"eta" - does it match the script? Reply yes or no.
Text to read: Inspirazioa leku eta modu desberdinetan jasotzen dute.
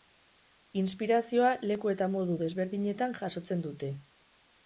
yes